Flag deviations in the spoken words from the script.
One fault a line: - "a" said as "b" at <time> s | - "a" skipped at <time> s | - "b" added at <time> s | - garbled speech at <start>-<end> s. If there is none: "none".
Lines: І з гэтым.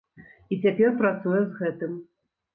- "цяпер працуе" added at 0.6 s